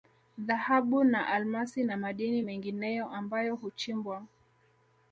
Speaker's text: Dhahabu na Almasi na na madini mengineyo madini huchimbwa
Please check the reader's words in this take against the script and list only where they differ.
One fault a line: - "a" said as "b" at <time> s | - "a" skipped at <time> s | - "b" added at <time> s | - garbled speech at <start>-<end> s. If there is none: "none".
- "na" skipped at 2.0 s
- "madini" said as "ambayo" at 3.1 s